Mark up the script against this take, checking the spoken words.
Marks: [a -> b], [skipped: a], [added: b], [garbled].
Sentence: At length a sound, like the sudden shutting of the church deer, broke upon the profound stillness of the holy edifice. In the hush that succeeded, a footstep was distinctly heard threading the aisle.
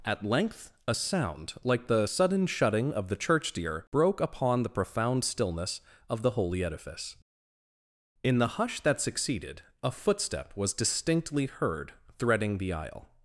At length a sound, like the sudden shutting of the church deer, broke upon the profound stillness of the holy edifice. In the hush that succeeded, a footstep was distinctly heard threading the aisle.